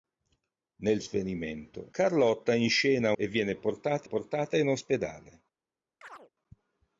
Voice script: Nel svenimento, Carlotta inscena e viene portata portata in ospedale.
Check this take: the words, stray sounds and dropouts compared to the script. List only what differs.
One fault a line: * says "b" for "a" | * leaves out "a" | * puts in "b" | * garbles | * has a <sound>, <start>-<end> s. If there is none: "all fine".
* has a chirp, 6.0-6.3 s